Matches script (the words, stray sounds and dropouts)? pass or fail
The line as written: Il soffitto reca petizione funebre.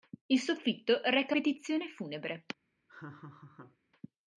fail